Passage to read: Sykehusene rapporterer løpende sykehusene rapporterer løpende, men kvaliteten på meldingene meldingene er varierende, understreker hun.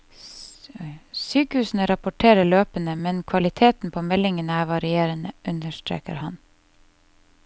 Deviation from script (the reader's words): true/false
true